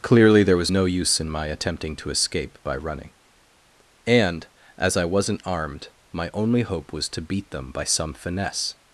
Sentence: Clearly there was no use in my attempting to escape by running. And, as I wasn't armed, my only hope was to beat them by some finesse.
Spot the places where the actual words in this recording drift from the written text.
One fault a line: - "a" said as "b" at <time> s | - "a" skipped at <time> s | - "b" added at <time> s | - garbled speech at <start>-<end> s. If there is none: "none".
none